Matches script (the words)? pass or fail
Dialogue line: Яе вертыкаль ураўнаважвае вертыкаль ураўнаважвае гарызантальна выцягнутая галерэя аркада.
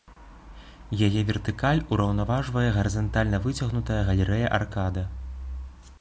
fail